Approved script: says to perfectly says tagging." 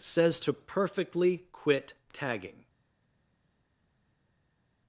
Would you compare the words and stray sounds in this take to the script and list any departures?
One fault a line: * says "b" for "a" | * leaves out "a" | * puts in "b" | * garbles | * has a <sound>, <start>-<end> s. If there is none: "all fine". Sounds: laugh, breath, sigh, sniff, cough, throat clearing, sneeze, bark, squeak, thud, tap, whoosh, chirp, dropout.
* says "quit" for "says"